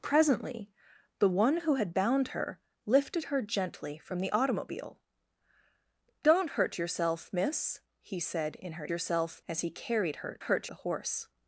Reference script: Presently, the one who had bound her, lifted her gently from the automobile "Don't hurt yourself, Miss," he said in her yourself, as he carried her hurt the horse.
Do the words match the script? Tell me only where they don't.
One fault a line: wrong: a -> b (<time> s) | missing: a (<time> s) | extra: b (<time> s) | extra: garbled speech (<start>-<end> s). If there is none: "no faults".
no faults